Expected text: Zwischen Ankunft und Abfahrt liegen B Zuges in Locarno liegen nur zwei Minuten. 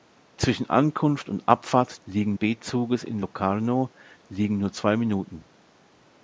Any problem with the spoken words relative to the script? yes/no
no